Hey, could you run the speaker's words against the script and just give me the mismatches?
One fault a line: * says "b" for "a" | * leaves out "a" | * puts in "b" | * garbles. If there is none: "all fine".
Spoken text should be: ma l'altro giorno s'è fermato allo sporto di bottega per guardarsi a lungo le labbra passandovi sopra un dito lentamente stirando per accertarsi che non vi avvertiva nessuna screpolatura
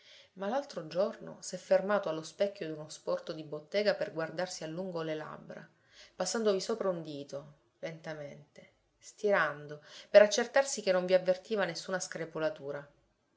* puts in "specchio d'uno"